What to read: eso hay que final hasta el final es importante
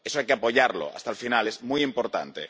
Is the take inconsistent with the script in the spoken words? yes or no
yes